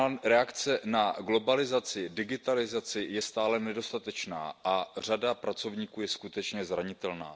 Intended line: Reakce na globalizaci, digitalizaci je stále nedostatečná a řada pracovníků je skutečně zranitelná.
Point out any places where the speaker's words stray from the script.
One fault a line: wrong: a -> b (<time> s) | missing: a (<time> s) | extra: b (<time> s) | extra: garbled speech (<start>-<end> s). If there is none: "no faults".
no faults